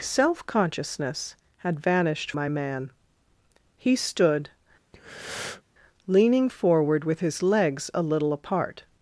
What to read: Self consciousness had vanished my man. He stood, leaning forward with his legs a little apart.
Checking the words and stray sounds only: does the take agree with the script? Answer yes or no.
no